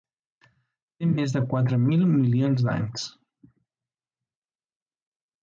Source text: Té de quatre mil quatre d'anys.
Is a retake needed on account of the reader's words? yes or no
yes